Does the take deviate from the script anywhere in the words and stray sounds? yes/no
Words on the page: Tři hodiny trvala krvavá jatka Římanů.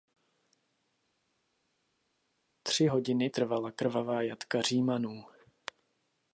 no